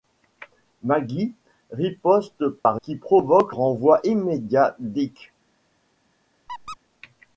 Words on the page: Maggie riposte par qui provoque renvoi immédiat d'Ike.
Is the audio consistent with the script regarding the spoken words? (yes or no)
yes